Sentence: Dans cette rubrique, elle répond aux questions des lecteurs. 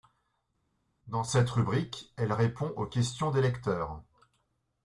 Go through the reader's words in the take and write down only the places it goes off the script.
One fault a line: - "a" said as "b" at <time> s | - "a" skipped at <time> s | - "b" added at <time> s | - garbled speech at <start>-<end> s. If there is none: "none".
none